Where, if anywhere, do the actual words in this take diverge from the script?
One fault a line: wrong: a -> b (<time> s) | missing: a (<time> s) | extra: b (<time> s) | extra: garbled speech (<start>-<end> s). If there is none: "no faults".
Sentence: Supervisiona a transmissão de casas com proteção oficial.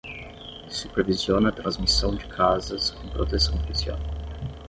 no faults